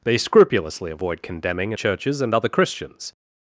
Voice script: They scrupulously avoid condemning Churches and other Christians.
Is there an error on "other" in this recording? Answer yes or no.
no